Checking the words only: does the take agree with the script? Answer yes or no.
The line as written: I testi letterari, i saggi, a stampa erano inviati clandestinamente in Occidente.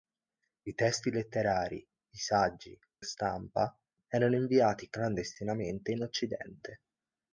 yes